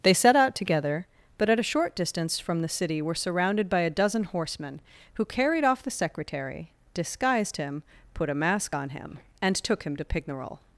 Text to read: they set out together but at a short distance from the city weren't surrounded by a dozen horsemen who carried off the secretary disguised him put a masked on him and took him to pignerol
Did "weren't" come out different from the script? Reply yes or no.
yes